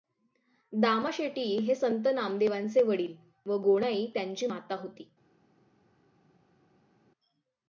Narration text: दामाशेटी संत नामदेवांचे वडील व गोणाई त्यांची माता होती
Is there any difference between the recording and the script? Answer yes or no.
yes